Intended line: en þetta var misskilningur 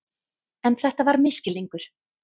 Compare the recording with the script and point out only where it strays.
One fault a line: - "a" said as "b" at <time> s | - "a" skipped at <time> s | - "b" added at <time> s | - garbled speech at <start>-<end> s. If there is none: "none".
none